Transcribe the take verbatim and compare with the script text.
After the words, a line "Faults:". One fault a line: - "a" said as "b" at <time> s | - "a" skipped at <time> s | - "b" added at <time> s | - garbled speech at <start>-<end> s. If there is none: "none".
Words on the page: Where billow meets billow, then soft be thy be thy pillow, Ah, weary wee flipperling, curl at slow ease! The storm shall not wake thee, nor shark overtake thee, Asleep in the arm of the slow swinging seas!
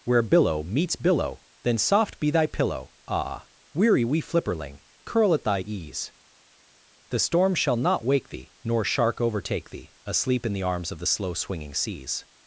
Where billow meets billow, then soft be thy pillow, Ah, weary wee flipperling, curl at thy ease! The storm shall not wake thee, nor shark overtake thee, Asleep in the arms of the slow swinging seas!
Faults:
- "be thy" skipped at 2.5 s
- "slow" said as "thy" at 5.4 s
- "arm" said as "arms" at 10.6 s